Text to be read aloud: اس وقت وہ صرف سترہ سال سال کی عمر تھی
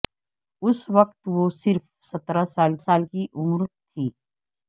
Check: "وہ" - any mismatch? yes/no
no